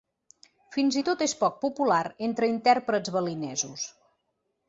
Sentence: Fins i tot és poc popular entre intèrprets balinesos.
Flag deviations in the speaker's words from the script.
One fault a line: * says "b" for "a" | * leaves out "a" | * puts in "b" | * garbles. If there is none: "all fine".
all fine